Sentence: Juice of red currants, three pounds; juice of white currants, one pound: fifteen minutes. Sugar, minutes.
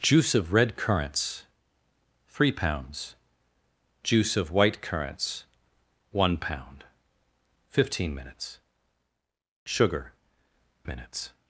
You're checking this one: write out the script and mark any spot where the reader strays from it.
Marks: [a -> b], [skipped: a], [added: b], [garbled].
Juice of red currants, three pounds; juice of white currants, one pound: fifteen minutes. Sugar, minutes.